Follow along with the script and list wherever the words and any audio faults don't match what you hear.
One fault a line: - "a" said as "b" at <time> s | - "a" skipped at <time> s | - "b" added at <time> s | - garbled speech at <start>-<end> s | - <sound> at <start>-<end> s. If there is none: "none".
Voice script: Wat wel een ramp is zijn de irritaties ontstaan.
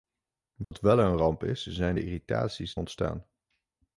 - dropout at 0.6-0.7 s